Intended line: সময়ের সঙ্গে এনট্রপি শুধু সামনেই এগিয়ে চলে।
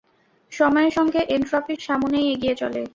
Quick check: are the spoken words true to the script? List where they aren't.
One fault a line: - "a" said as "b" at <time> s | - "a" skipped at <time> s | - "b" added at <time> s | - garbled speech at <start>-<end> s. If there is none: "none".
- "শুধু" skipped at 1.7 s